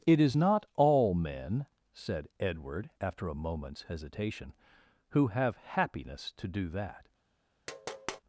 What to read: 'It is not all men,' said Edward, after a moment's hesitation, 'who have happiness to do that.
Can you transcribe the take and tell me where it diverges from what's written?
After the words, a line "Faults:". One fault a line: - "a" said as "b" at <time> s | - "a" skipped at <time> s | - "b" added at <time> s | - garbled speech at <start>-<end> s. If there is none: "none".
'It is not all men,' said Edward, after a moment's hesitation, 'who have happiness to do that.
Faults:
none